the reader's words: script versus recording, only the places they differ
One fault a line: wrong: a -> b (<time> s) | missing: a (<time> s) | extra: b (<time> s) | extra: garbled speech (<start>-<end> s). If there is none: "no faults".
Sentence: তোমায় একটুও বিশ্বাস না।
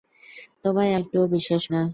no faults